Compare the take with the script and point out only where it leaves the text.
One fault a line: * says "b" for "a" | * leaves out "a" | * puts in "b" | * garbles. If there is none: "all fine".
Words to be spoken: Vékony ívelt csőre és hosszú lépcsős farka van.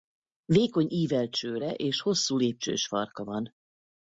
all fine